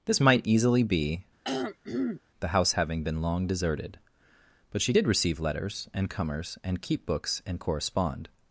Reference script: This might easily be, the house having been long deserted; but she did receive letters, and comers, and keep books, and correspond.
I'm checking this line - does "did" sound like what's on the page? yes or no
yes